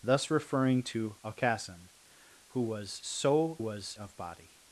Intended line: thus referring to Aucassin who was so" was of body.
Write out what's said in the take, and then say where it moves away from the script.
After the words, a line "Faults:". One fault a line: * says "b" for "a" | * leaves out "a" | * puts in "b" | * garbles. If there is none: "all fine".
thus referring to Aucassin who was so" was of body.
Faults:
all fine